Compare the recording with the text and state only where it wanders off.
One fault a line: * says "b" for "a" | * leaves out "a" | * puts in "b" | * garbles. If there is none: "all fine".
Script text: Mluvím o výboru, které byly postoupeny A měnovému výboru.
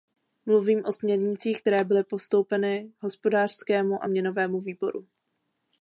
* says "směrnicích" for "výboru"
* puts in "Hospodářskému"